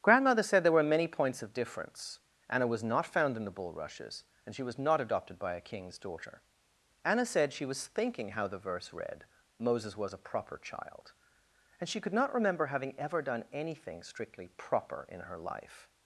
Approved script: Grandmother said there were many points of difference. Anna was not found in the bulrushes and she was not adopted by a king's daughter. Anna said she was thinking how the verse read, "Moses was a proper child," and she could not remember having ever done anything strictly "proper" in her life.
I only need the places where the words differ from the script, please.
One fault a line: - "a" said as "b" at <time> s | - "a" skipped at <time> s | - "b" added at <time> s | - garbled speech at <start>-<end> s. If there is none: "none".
none